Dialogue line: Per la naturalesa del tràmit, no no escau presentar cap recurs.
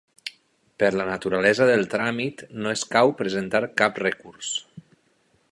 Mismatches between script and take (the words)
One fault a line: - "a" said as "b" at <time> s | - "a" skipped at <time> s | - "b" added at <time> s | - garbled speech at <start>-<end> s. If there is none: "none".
- "no" skipped at 2.7 s